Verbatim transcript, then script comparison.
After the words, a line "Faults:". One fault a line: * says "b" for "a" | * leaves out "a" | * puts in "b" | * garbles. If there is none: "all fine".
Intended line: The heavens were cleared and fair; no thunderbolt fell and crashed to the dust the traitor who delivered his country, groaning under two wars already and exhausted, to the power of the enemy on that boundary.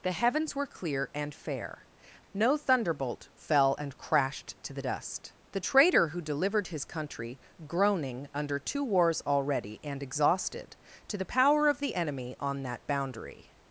The heavens were clear and fair; no thunderbolt fell and crashed to the dust the traitor who delivered his country, groaning under two wars already and exhausted, to the power of the enemy on that boundary.
Faults:
* says "clear" for "cleared"